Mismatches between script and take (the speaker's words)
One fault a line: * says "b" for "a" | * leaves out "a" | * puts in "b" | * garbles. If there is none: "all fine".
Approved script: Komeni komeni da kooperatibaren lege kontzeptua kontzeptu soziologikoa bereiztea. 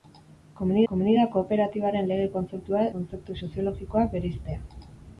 all fine